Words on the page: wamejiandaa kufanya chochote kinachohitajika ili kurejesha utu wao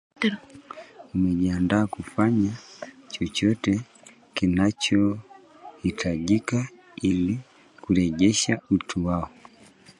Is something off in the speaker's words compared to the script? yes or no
no